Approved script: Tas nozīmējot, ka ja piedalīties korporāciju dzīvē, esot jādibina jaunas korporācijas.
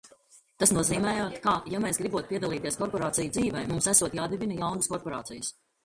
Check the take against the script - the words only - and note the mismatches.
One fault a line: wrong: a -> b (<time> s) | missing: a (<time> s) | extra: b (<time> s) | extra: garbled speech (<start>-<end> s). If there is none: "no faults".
extra: mēs gribot (1.8 s)
extra: mums (3.7 s)